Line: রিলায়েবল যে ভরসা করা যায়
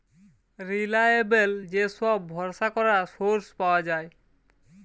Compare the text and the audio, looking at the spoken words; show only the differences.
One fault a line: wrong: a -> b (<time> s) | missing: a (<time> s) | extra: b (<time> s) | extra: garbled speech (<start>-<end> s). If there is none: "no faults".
extra: সব (2.0 s)
extra: সোর্স পাওয়া (3.2 s)